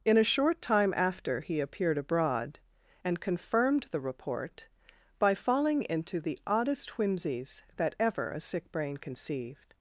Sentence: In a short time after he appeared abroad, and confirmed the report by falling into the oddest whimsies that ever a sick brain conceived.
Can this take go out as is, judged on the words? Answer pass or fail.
pass